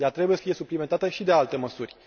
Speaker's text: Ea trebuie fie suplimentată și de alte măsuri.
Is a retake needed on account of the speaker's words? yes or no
no